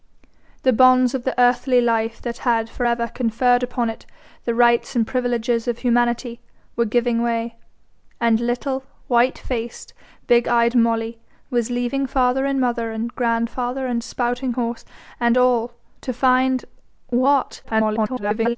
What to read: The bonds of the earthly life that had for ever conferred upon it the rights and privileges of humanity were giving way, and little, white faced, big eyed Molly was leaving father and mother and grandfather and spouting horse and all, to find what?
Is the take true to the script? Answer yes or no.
no